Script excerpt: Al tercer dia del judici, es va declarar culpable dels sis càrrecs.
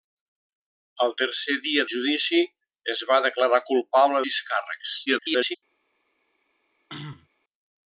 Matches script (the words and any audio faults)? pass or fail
fail